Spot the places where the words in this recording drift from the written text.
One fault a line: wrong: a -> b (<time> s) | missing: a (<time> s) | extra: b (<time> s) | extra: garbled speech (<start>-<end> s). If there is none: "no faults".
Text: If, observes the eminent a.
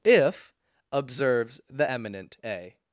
no faults